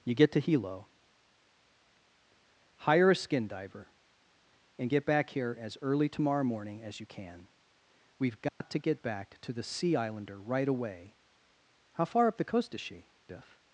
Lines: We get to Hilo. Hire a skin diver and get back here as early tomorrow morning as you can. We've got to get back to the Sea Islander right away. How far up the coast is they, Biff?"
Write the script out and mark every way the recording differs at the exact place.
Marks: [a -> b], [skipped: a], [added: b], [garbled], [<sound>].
[We -> You] get to Hilo. Hire a skin diver and get back here as early tomorrow morning as you can. We've got [dropout] to get back to the Sea Islander right away. How far up the coast is [they, -> she] Biff?"